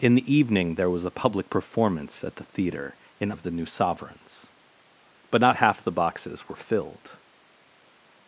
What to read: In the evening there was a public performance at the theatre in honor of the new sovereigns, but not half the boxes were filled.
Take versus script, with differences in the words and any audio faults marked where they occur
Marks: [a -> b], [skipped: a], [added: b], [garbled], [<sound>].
In the evening there was a public performance at the theatre in [skipped: honor] of the new sovereigns, but not half the boxes were filled.